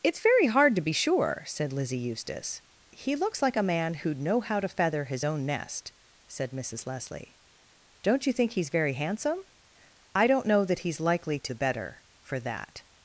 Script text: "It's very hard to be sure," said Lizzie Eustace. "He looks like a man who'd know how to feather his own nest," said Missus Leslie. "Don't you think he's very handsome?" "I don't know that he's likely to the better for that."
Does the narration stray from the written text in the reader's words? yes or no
no